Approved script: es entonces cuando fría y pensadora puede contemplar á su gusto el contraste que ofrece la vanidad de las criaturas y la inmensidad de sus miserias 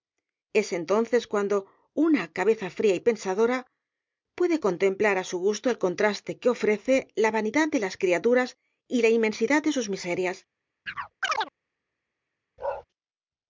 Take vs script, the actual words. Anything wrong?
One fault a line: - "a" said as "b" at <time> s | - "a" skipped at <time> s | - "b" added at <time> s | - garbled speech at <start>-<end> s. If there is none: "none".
- "una cabeza" added at 1.9 s